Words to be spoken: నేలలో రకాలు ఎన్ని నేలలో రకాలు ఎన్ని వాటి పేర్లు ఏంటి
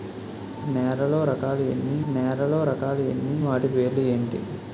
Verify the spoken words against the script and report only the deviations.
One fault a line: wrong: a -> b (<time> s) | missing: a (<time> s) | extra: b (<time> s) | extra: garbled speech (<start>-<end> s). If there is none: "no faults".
no faults